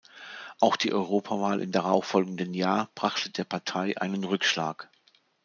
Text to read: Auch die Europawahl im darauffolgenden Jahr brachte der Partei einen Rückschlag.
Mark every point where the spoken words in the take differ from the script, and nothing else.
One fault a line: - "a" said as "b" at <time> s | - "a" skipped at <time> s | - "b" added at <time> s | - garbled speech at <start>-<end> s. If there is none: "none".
none